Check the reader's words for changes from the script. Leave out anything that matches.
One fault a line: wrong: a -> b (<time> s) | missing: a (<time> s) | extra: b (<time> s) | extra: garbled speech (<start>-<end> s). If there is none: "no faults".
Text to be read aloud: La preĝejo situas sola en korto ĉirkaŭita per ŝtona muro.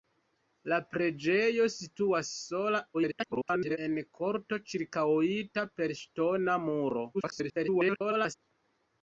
extra: garbled speech (2.9-3.8 s)
extra: garbled speech (7.1-8.4 s)